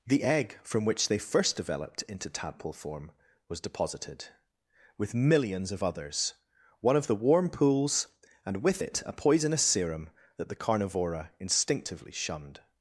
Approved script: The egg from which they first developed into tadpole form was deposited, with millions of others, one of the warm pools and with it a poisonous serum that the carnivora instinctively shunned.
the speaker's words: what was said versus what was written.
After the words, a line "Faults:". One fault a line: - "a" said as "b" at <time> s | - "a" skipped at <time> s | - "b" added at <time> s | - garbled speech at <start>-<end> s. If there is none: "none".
The egg from which they first developed into tadpole form was deposited, with millions of others, one of the warm pools and with it a poisonous serum that the carnivora instinctively shunned.
Faults:
none